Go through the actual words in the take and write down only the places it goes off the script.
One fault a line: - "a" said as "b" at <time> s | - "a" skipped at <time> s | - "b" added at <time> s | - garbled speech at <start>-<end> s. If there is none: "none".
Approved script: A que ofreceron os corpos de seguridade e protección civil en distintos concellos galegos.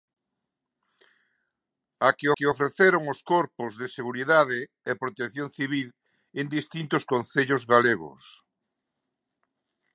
- "que" added at 2.3 s